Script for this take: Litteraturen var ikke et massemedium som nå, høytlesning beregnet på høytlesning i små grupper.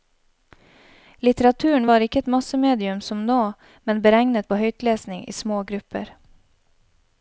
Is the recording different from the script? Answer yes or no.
yes